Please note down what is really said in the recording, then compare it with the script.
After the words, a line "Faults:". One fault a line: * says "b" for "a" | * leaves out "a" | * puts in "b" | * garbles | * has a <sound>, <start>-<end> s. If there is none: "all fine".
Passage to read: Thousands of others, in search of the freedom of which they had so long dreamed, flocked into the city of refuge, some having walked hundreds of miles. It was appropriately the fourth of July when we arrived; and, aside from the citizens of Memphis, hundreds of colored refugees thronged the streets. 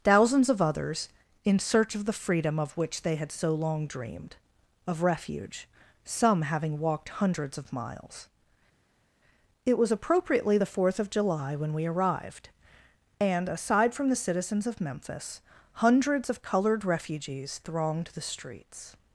Thousands of others, in search of the freedom of which they had so long dreamed, of refuge, some having walked hundreds of miles. It was appropriately the fourth of July when we arrived; and, aside from the citizens of Memphis, hundreds of colored refugees thronged the streets.
Faults:
* leaves out "flocked into the city"